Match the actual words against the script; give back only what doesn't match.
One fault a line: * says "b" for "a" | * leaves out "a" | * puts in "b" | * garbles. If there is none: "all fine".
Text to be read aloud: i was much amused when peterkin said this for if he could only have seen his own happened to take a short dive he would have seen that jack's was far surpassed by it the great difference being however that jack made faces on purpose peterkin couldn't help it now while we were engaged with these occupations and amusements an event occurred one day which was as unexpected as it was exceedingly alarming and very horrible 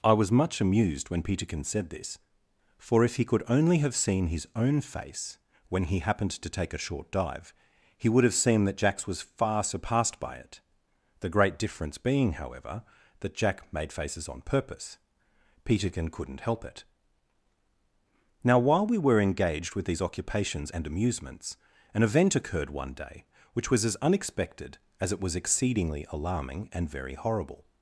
* puts in "face when he"